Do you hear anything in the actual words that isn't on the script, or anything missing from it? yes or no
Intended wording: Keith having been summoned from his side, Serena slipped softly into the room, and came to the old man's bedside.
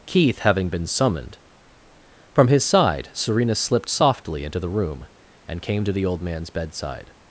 no